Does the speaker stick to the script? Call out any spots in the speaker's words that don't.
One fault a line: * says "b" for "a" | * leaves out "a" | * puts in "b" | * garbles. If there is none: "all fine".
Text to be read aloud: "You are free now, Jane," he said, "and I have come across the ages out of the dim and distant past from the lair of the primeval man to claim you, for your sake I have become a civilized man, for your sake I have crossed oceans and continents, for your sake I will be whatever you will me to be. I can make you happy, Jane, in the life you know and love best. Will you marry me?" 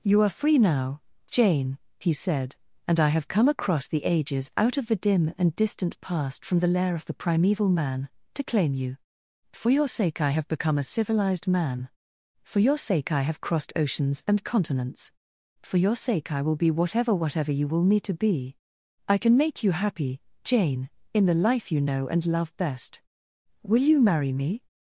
* puts in "whatever"